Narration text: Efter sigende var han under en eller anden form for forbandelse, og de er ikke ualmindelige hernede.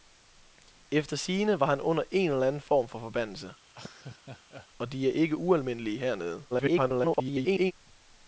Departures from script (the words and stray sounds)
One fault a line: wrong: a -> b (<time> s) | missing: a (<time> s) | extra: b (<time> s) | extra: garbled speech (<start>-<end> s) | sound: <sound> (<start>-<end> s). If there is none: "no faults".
sound: laugh (3.7-4.7 s)
extra: garbled speech (6.5-7.7 s)